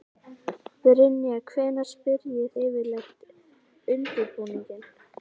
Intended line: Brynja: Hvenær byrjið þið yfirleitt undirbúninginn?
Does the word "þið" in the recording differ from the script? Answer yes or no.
yes